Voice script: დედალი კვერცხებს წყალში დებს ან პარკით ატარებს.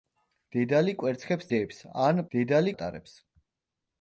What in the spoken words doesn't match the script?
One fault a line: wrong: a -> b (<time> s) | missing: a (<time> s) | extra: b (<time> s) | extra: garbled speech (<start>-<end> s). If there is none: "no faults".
missing: წყალში (1.5 s)
wrong: პარკით -> დედალი (2.3 s)